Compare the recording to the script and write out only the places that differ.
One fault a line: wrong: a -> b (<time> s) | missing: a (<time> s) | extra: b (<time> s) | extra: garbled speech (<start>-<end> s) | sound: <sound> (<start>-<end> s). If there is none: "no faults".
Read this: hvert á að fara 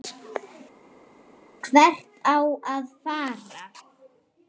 no faults